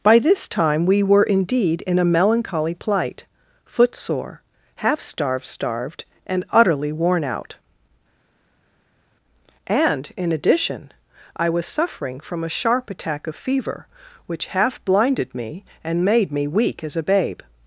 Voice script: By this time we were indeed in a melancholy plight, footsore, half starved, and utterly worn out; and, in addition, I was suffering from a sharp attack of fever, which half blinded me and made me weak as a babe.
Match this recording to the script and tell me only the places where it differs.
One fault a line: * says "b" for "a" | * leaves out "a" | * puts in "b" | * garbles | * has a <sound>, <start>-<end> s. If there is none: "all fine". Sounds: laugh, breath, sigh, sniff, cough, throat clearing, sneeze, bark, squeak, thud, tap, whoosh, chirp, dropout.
* puts in "starved"